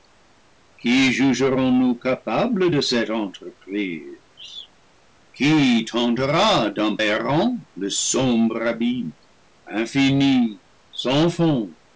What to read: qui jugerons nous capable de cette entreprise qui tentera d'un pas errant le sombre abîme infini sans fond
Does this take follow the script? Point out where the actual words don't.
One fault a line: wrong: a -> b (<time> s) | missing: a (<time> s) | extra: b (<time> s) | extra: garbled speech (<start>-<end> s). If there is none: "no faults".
missing: pas (7.0 s)